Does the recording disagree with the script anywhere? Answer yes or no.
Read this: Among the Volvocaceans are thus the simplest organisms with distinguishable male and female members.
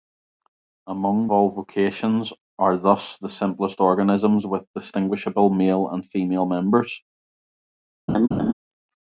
yes